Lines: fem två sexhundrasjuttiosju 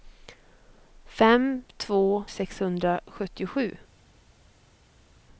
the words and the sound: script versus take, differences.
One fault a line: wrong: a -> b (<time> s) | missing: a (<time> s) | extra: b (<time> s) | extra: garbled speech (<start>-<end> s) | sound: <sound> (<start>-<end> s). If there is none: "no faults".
no faults